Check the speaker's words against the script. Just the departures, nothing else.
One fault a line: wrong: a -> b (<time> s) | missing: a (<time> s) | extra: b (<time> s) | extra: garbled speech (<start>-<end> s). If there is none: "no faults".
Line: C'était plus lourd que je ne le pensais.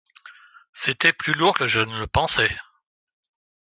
no faults